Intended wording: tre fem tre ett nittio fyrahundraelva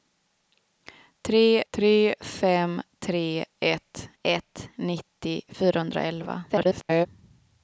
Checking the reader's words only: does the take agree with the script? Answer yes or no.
no